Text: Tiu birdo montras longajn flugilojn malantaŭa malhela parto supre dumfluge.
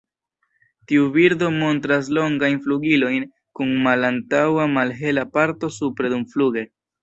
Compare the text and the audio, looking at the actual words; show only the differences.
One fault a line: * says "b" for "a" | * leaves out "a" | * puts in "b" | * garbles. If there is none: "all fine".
* puts in "kun"